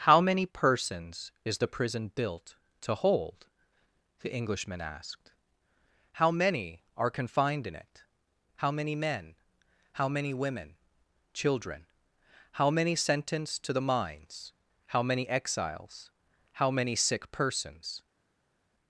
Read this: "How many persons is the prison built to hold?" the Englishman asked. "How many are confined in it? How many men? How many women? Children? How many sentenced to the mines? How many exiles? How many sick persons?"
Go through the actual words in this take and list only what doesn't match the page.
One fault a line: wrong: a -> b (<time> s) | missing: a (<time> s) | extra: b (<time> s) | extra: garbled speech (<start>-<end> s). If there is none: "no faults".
no faults